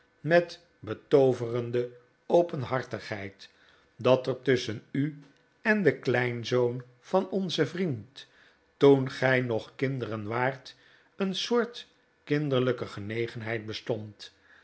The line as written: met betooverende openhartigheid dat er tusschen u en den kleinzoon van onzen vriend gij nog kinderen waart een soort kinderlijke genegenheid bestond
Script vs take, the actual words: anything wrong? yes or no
yes